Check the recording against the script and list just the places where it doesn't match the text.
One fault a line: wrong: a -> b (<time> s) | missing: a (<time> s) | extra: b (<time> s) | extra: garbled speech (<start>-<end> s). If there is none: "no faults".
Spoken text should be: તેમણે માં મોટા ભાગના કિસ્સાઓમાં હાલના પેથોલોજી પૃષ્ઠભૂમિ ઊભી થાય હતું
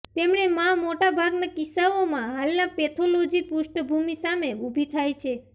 extra: સામે (4.2 s)
wrong: હતું -> છે (5.2 s)